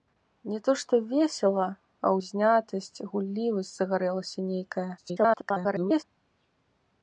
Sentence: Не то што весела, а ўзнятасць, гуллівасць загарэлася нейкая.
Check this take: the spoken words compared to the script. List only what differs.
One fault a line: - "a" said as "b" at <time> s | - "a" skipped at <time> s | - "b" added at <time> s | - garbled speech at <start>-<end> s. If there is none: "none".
- garbled speech at 5.0-6.0 s